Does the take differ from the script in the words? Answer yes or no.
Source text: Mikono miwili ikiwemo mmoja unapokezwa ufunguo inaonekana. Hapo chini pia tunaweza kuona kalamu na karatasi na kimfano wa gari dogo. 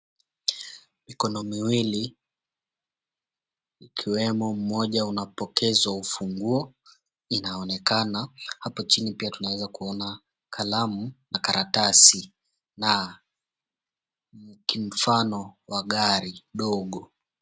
no